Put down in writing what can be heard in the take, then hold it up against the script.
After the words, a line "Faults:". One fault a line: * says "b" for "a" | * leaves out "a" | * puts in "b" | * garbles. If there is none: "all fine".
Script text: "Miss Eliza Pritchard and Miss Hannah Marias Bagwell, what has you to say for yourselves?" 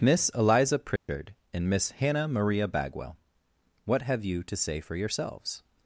"Miss Eliza Pritchard and Miss Hannah Maria Bagwell, what have you to say for yourselves?"
Faults:
* says "Maria" for "Marias"
* says "have" for "has"